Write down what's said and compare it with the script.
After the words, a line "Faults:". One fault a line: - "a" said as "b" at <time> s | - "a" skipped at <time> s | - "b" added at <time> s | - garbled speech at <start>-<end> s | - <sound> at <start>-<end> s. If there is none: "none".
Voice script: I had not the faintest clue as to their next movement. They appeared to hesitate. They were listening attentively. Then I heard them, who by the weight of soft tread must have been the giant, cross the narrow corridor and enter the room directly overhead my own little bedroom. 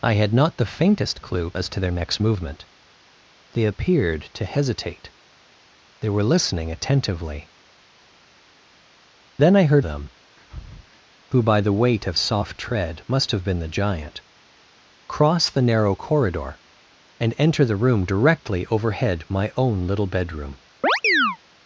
I had not the faintest clue as to their next movement. They appeared to hesitate. They were listening attentively. Then I heard them, who by the weight of soft tread must have been the giant, cross the narrow corridor and enter the room directly overhead my own little bedroom.
Faults:
- breath at 10.4-11.0 s
- chirp at 20.8-21.4 s